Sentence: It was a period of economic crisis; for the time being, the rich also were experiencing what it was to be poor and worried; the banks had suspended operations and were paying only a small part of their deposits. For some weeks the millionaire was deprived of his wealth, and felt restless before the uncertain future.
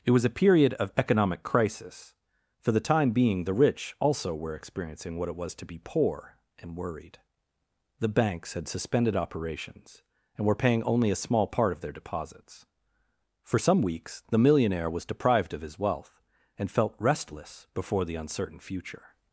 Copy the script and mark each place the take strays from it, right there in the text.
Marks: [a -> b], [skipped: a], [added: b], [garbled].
It was a period of economic crisis; for the time being, the rich also were experiencing what it was to be poor and worried; the banks had suspended operations and were paying only a small part of their deposits. For some weeks the millionaire was deprived of his wealth, and felt restless before the uncertain future.